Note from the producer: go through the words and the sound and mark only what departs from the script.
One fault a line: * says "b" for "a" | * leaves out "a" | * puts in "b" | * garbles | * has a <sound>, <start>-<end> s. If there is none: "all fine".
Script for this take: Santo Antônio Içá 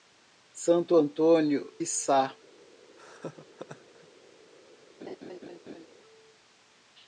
* has a laugh, 3.0-4.1 s
* has a laugh, 5.0-5.9 s